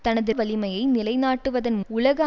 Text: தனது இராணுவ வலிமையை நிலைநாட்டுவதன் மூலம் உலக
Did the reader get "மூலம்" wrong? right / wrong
wrong